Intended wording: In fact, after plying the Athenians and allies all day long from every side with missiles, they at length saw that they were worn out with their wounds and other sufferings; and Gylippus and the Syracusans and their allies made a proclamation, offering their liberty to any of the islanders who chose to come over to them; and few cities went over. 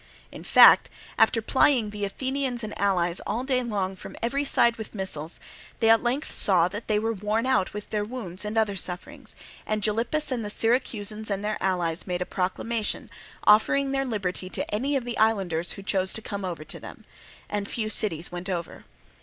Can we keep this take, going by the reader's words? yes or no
yes